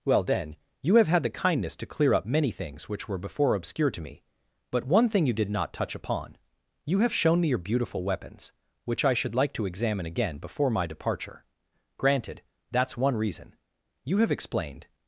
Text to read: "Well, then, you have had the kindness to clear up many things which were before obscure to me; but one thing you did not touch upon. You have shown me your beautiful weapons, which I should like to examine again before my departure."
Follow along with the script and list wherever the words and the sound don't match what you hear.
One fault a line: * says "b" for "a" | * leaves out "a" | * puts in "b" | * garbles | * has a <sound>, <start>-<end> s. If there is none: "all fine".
* puts in "Granted That's one reason You have explained"